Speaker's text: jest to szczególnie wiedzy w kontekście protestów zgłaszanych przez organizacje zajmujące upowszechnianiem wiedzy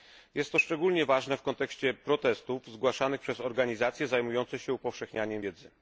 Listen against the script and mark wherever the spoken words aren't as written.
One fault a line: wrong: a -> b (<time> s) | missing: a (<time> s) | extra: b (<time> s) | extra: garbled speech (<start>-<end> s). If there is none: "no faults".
wrong: wiedzy -> ważne (1.1 s)
extra: się (4.6 s)